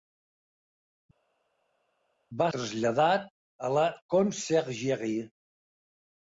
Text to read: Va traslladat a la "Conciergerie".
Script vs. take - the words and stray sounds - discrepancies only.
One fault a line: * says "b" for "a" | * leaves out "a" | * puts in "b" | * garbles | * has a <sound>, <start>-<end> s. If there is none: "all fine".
all fine